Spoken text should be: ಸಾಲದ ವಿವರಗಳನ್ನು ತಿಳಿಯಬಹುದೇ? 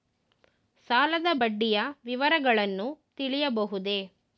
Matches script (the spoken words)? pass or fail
fail